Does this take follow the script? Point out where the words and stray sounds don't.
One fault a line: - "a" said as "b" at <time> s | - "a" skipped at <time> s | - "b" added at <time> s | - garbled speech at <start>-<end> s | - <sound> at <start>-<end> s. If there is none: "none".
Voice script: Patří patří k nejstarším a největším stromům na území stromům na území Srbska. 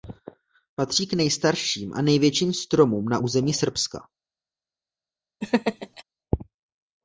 - "patří" skipped at 1.1 s
- "stromům na území" skipped at 3.5 s
- laugh at 5.4-6.0 s